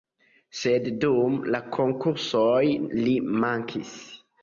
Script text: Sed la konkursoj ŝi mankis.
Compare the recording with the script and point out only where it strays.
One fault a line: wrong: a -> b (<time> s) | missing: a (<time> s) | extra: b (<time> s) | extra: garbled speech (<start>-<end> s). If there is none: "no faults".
extra: dum (1.1 s)
wrong: ŝi -> li (3.0 s)